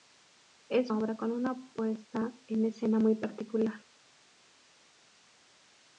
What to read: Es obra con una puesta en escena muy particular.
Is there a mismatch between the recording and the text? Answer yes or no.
no